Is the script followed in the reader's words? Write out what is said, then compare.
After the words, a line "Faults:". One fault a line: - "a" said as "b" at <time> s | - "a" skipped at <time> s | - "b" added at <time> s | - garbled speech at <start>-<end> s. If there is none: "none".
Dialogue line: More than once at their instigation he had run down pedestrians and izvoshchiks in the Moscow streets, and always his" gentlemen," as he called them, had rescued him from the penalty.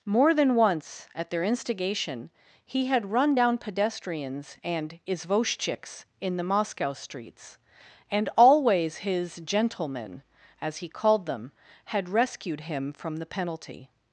More than once at their instigation he had run down pedestrians and izvoshchiks in the Moscow streets, and always his" gentlemen," as he called them, had rescued him from the penalty.
Faults:
none